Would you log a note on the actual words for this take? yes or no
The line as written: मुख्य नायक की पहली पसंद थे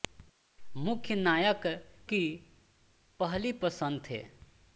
no